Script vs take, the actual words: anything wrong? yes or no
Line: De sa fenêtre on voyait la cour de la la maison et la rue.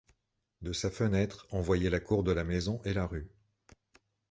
yes